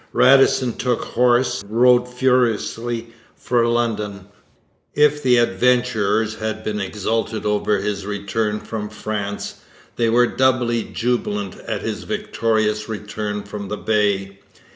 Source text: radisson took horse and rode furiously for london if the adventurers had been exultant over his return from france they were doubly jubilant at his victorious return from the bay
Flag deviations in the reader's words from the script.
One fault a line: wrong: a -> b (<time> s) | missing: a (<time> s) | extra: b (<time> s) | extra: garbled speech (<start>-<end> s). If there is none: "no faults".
missing: and (1.6 s)